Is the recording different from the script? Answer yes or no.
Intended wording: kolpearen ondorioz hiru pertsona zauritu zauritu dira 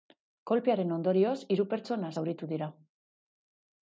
yes